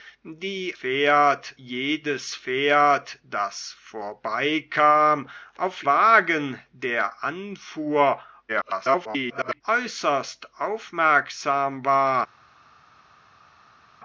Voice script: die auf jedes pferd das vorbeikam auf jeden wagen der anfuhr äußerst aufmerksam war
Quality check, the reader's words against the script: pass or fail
fail